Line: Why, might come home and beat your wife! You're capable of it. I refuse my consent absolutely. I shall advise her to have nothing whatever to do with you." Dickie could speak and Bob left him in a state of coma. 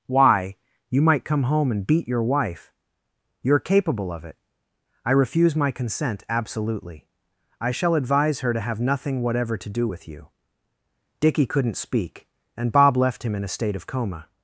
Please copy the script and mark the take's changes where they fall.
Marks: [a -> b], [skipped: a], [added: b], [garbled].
Why, [added: you] might come home and beat your wife! You're capable of it. I refuse my consent absolutely. I shall advise her to have nothing whatever to do with you." Dickie [could -> couldn't] speak and Bob left him in a state of coma.